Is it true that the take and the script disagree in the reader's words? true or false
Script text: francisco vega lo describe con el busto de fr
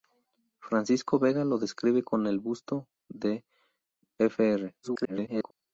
true